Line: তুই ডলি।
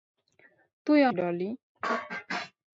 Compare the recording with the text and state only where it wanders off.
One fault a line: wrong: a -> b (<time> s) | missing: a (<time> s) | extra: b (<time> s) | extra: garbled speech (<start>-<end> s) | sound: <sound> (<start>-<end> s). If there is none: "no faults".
no faults